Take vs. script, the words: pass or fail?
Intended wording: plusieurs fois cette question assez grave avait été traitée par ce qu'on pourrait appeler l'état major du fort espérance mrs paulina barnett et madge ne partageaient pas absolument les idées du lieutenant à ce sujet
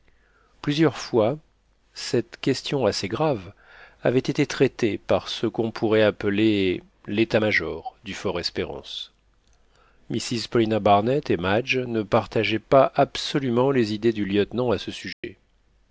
pass